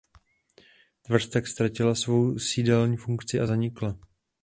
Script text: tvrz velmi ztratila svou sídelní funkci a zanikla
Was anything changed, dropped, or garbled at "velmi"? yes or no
yes